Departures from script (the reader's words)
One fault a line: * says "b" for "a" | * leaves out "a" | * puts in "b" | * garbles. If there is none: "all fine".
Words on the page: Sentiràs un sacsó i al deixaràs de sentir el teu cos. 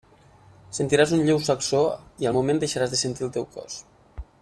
* puts in "lleu"
* puts in "moment"